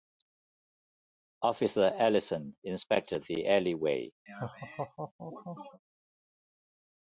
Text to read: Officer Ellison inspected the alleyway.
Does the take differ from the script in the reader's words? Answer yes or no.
no